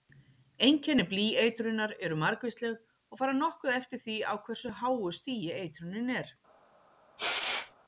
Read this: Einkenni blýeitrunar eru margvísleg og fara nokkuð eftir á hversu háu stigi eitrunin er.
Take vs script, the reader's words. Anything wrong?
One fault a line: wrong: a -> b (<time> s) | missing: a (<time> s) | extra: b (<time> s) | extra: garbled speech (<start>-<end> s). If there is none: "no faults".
extra: því (4.1 s)